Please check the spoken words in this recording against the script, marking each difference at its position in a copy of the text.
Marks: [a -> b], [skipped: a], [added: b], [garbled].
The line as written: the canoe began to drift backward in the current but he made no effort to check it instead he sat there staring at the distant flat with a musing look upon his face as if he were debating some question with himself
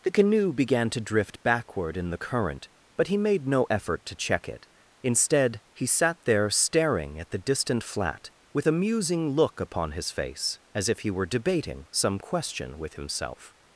the canoe began to drift backward in the current but he made no effort to check it instead he sat there staring at the distant flat with a musing look upon his face as if he were debating some question with himself